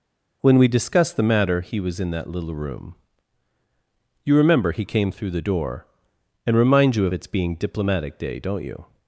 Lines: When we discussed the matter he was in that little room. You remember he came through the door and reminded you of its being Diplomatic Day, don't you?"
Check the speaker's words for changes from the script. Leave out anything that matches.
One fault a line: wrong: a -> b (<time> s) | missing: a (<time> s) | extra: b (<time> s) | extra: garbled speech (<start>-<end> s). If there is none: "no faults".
wrong: reminded -> remind (6.6 s)